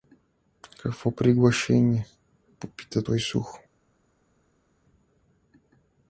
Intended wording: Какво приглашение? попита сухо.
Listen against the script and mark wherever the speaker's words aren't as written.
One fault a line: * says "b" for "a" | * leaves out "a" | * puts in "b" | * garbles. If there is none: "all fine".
* puts in "той"